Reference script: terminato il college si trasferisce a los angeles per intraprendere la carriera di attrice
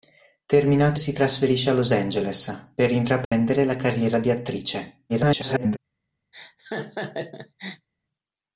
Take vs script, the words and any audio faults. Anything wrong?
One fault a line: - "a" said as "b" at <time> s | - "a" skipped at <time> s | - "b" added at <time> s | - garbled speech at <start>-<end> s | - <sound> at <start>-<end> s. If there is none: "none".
- "il college" skipped at 1.0 s
- dropout at 3.2-3.3 s
- garbled speech at 5.1-5.8 s
- laugh at 6.3-7.9 s